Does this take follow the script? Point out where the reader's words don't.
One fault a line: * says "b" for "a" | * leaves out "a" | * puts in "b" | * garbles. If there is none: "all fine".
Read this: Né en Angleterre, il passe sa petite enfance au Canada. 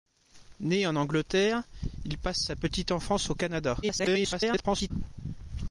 * garbles